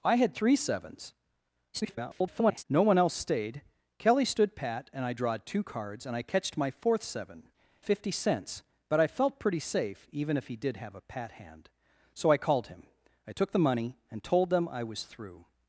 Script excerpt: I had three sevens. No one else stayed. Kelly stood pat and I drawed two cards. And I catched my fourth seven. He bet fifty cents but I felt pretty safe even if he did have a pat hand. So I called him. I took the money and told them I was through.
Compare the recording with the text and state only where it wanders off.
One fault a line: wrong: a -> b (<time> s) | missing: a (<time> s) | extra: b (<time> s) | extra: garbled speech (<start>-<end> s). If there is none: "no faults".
extra: garbled speech (1.7-2.6 s)
missing: He bet (7.4 s)